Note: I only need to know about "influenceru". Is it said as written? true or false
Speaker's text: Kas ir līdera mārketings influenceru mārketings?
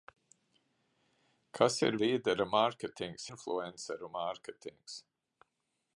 true